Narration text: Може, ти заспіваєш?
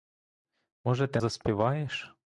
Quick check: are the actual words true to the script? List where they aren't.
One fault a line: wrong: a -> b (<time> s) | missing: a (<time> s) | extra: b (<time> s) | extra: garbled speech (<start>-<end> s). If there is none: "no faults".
no faults